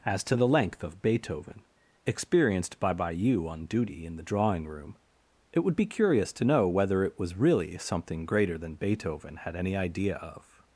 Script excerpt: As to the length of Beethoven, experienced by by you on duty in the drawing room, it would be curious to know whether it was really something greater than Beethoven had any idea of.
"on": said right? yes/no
yes